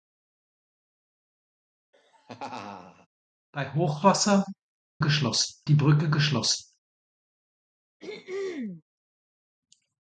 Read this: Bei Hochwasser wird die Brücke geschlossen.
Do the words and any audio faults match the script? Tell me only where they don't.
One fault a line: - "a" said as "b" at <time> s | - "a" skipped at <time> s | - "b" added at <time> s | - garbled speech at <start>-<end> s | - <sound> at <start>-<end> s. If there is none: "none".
- laugh at 1.9-3.1 s
- "wird" said as "geschlossen" at 5.0 s
- throat clearing at 8.0-8.8 s